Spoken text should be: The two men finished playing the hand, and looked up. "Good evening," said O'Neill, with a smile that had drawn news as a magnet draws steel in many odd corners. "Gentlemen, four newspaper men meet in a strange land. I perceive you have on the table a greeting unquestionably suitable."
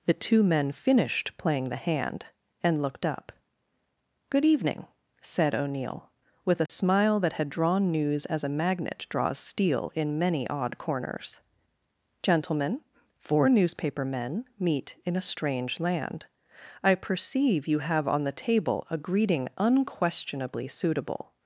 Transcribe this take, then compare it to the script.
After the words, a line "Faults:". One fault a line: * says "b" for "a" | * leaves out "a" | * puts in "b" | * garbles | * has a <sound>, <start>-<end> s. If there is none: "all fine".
The two men finished playing the hand, and looked up. "Good evening," said O'Neill, with a smile that had drawn news as a magnet draws steel in many odd corners. "Gentlemen, four newspaper men meet in a strange land. I perceive you have on the table a greeting unquestionably suitable."
Faults:
* has a dropout, 6.7-6.7 s